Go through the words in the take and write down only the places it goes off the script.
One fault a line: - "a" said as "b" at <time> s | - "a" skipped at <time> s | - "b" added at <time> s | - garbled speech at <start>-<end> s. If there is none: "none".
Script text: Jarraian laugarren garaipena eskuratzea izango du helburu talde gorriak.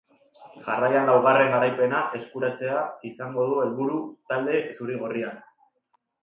- "zuri" added at 4.8 s